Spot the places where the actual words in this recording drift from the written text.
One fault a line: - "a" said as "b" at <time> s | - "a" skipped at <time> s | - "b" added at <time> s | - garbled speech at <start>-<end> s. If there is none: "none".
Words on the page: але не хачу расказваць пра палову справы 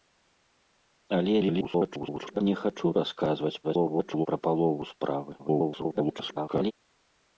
- garbled speech at 1.4-2.4 s
- garbled speech at 3.6-4.3 s
- garbled speech at 5.4-6.7 s